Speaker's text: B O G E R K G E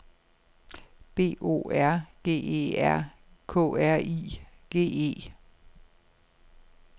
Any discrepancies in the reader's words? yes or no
yes